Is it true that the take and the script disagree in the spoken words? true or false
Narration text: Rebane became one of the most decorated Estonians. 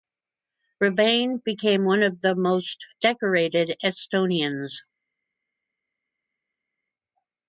false